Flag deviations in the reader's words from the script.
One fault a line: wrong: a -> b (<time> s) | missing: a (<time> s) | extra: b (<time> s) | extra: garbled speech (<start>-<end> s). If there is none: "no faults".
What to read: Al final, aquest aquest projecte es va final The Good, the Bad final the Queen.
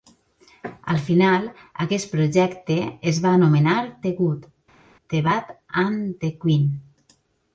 missing: aquest (2.1 s)
wrong: final -> anomenar (3.4 s)
wrong: final -> and (5.9 s)